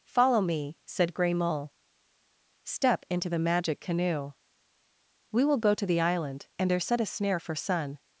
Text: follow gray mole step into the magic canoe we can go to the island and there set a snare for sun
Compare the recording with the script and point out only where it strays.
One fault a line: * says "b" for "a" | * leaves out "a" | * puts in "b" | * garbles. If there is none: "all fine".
* puts in "me said"
* says "will" for "can"